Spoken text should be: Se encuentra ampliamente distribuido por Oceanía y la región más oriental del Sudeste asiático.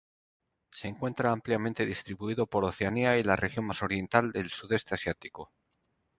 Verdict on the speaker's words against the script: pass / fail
pass